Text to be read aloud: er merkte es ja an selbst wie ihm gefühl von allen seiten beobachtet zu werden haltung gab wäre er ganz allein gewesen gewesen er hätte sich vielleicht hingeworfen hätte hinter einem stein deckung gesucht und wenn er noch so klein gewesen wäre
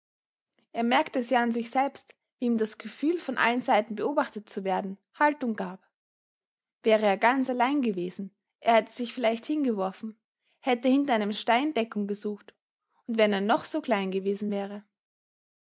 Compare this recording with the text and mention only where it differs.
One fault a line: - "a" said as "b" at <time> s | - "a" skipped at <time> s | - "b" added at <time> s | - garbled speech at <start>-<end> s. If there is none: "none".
- "sich" added at 1.5 s
- "das" added at 2.6 s
- "gewesen" skipped at 8.3 s